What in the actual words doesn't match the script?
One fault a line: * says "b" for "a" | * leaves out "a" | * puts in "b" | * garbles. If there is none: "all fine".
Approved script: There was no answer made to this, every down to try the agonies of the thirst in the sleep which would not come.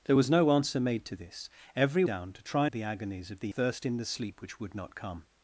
all fine